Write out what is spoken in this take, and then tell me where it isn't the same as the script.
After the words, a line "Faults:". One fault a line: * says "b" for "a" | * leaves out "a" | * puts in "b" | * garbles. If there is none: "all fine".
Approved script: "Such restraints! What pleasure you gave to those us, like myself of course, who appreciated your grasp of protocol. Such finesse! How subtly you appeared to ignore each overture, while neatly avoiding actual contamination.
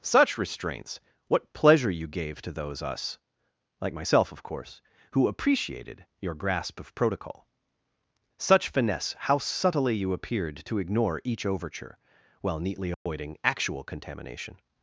"Such restraints! What pleasure you gave to those us, like myself of course, who appreciated your grasp of protocol. Such finesse! How subtly you appeared to ignore each overture, while neatly avoiding actual contamination.
Faults:
all fine